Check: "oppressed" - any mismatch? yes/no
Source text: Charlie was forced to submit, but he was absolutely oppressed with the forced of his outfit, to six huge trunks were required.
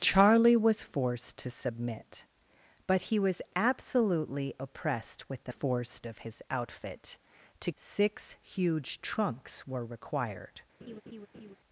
no